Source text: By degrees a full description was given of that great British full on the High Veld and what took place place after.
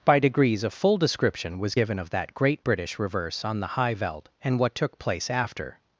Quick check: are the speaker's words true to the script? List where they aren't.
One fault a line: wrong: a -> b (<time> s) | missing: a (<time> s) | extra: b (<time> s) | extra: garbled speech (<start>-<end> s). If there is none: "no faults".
wrong: full -> reverse (3.0 s)
missing: place (5.3 s)